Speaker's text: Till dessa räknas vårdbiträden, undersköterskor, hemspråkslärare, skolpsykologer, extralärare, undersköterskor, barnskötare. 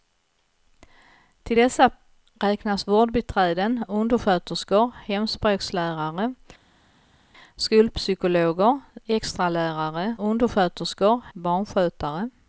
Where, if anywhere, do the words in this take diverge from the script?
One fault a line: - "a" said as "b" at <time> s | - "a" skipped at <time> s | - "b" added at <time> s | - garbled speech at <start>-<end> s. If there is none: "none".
none